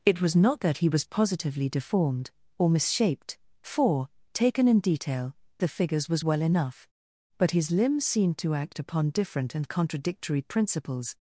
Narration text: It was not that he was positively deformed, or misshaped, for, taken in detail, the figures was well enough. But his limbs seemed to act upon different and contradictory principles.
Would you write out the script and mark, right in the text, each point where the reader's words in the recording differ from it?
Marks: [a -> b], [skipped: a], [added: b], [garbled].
It was not that he was positively deformed, or misshaped, for, taken in detail, the figures was well enough. But his limbs seemed to act upon different and contradictory principles.